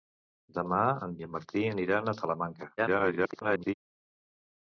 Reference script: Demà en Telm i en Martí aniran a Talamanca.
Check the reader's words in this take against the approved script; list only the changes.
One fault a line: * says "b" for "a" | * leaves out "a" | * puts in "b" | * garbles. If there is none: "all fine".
* leaves out "Telm"
* garbles